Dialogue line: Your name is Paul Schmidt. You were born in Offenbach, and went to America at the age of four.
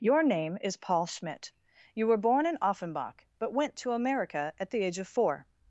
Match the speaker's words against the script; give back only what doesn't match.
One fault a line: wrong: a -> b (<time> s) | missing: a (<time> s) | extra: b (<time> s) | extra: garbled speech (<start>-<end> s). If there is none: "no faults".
wrong: and -> but (3.4 s)